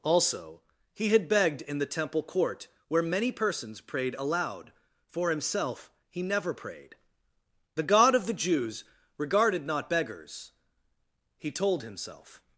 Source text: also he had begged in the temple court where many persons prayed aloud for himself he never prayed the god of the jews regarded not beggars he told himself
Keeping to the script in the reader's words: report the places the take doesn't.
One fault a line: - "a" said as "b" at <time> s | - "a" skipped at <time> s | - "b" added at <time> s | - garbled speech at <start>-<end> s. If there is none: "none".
none